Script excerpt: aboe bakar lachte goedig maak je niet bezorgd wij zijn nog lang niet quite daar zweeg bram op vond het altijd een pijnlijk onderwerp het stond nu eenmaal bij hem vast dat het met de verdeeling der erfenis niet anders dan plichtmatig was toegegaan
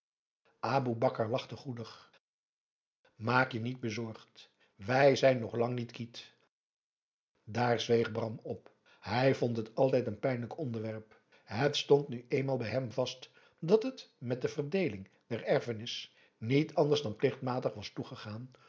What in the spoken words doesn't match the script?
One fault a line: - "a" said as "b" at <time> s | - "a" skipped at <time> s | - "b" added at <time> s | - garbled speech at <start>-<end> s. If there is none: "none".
- "hij" added at 9.0 s